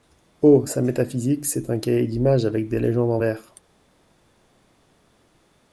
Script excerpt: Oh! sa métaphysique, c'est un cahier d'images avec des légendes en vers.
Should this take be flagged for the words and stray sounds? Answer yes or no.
no